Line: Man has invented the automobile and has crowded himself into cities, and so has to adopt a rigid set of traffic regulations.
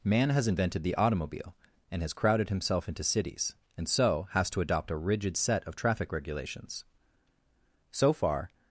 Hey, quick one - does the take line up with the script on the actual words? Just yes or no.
no